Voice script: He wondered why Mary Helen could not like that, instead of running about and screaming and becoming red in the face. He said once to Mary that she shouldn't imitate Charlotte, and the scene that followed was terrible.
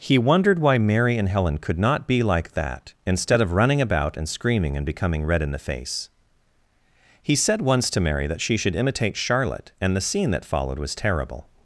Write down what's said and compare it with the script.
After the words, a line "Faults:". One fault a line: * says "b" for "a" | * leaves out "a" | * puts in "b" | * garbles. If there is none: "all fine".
He wondered why Mary and Helen could not be like that, instead of running about and screaming and becoming red in the face. He said once to Mary that she should imitate Charlotte, and the scene that followed was terrible.
Faults:
* puts in "and"
* puts in "be"
* says "should" for "shouldn't"